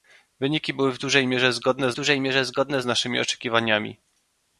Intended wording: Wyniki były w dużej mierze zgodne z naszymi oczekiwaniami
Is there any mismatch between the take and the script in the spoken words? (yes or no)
yes